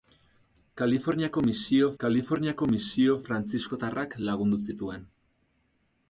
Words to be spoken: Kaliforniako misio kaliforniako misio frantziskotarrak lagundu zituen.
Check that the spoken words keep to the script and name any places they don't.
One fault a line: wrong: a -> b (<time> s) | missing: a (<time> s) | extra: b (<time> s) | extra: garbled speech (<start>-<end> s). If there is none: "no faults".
no faults